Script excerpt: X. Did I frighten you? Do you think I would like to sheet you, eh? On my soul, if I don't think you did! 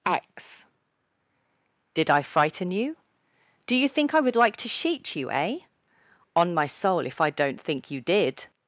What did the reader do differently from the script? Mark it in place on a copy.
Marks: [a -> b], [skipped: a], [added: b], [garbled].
X. Did I frighten you? Do you think I would like to sheet you, eh? On my soul, if I don't think you did!